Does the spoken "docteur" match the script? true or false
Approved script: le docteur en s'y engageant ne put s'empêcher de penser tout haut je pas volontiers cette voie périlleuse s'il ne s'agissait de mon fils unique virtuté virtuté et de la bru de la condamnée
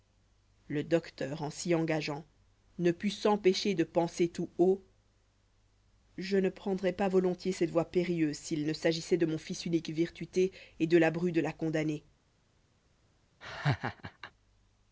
true